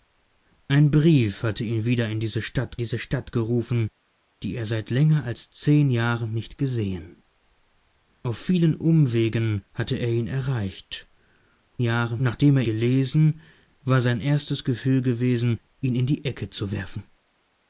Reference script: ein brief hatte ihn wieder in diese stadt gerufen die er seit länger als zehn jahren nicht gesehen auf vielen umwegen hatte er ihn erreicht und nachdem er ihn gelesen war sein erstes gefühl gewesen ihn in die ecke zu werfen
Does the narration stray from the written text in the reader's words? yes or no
yes